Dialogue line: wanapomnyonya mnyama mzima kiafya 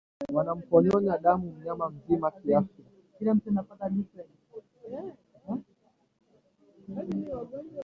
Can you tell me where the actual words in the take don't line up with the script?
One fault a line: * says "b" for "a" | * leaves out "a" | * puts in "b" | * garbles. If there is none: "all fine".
* puts in "damu"